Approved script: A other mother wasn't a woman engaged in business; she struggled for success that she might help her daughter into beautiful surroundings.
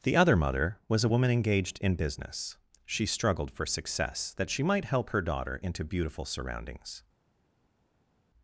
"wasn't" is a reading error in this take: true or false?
true